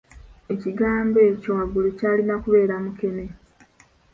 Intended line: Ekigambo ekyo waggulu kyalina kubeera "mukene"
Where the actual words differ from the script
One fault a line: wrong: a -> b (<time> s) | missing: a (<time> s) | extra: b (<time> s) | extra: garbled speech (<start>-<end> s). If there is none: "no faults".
no faults